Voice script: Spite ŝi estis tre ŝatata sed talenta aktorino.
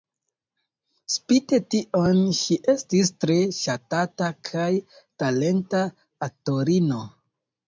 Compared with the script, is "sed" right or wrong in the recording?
wrong